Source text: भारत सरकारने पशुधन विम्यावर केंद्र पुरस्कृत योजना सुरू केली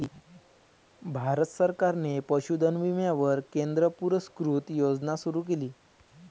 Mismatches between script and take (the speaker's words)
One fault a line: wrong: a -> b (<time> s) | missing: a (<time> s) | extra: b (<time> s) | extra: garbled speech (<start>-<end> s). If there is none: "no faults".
no faults